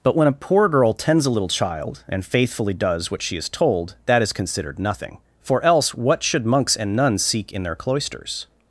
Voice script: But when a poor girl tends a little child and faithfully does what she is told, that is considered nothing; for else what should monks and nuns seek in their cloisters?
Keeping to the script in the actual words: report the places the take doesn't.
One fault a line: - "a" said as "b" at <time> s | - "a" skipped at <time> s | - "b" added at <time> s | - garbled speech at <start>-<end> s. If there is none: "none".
none